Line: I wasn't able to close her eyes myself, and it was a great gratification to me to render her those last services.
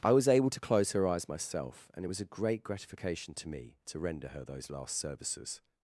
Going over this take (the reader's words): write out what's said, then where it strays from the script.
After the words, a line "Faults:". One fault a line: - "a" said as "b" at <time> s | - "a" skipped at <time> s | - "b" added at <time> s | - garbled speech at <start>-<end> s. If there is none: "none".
I was able to close her eyes myself, and it was a great gratification to me to render her those last services.
Faults:
- "wasn't" said as "was" at 0.1 s